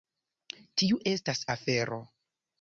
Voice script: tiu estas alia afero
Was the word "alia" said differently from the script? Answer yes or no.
yes